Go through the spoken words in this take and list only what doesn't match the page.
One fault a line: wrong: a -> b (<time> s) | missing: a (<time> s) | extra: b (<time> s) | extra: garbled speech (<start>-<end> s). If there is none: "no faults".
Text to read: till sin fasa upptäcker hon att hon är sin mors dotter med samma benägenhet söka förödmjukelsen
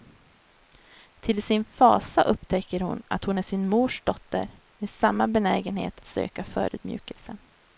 no faults